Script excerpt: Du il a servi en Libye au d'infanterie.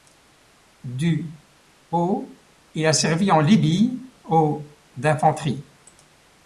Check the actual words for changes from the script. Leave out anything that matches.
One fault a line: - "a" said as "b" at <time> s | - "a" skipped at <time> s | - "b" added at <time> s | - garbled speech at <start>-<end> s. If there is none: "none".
- "au" added at 1.9 s